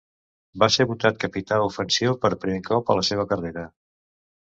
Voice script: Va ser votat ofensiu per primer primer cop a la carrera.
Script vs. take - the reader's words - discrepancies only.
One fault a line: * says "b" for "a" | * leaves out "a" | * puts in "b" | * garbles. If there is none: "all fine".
* puts in "capità"
* leaves out "primer"
* puts in "seva"